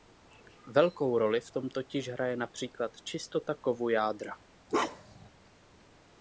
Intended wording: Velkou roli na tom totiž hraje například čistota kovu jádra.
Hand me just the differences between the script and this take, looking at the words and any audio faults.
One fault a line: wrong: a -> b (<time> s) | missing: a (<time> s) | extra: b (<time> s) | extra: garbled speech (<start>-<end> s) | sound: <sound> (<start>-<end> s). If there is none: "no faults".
wrong: na -> v (1.4 s)
sound: bark (4.7-5.3 s)